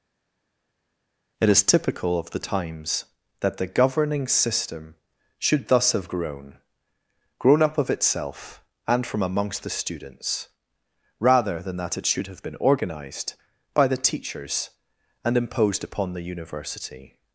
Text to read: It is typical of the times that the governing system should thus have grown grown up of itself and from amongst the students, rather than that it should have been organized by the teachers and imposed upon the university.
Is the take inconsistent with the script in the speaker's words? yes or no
no